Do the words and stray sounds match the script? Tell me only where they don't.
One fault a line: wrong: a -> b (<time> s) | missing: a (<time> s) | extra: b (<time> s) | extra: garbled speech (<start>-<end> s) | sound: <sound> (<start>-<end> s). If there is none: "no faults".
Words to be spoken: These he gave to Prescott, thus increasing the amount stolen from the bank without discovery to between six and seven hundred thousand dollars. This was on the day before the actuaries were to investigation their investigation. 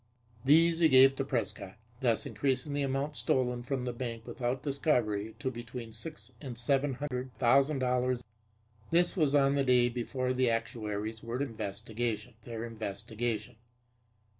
sound: dropout (7.1-7.1 s)